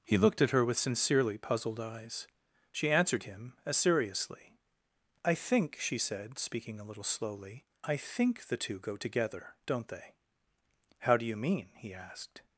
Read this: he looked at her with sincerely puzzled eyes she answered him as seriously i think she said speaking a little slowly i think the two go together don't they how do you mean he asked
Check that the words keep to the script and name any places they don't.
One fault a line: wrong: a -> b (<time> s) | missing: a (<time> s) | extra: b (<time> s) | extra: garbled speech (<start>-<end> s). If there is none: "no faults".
no faults